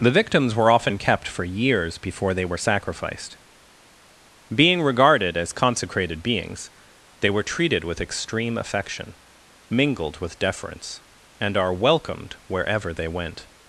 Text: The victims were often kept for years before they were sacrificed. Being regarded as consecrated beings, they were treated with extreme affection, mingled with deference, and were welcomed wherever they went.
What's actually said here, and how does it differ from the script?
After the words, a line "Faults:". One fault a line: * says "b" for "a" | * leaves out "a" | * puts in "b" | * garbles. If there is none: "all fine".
The victims were often kept for years before they were sacrificed. Being regarded as consecrated beings, they were treated with extreme affection, mingled with deference, and are welcomed wherever they went.
Faults:
* says "are" for "were"